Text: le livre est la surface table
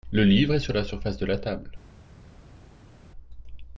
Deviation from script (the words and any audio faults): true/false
true